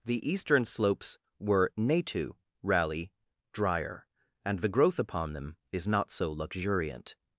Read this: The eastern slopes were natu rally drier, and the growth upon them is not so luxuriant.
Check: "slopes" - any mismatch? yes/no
no